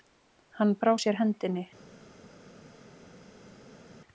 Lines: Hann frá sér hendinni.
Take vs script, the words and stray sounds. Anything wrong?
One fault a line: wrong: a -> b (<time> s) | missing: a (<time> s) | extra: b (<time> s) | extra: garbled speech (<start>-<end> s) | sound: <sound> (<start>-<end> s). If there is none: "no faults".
no faults